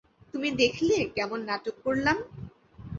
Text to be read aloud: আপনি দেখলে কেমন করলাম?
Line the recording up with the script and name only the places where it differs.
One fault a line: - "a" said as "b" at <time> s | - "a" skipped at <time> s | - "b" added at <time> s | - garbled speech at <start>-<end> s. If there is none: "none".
- "আপনি" said as "তুমি" at 0.3 s
- "নাটক" added at 1.5 s